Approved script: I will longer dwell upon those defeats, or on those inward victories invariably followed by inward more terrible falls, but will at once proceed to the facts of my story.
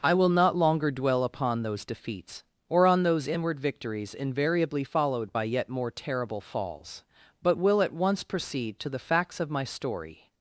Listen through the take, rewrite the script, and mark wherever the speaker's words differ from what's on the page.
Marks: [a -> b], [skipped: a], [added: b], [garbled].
I will [added: not] longer dwell upon those defeats, or on those inward victories invariably followed by [inward -> yet] more terrible falls, but will at once proceed to the facts of my story.